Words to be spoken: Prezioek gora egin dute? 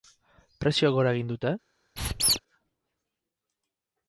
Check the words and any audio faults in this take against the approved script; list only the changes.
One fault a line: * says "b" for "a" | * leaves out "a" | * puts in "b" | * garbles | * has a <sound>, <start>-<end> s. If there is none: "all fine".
* has a squeak, 2.0-2.4 s